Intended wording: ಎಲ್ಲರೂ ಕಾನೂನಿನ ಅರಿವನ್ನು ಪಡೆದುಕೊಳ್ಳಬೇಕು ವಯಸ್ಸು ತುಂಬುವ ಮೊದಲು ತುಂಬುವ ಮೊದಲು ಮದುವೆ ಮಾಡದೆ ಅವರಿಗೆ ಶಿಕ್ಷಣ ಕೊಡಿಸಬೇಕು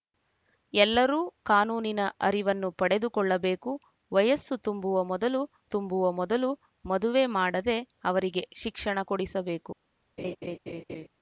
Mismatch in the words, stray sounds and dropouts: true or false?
true